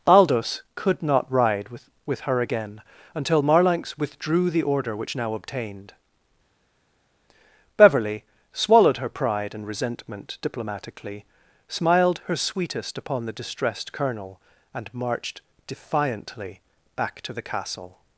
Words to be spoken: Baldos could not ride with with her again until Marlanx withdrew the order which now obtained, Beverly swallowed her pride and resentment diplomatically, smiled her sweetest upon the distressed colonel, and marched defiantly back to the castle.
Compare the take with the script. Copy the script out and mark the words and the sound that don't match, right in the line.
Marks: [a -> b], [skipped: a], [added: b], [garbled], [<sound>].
Baldos could not ride with with her again until Marlanx withdrew the order which now obtained, Beverly swallowed her pride and resentment diplomatically, smiled her sweetest upon the distressed colonel, and marched defiantly back to the castle.